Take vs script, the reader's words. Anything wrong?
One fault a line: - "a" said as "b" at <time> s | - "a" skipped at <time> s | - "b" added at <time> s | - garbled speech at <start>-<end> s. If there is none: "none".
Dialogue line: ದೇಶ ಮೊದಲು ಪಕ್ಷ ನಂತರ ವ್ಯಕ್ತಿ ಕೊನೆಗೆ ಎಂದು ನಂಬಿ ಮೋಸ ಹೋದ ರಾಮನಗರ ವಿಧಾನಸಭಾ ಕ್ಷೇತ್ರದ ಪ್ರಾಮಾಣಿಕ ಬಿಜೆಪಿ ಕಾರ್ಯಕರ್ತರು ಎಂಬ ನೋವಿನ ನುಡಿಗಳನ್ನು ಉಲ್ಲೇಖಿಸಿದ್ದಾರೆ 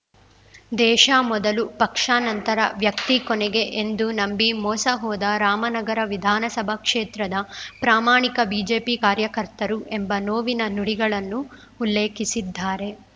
none